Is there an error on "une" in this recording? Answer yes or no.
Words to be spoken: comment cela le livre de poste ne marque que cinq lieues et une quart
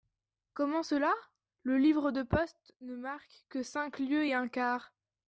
yes